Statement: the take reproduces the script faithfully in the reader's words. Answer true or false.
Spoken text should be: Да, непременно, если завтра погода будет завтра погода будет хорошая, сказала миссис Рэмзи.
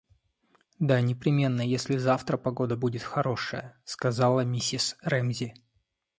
false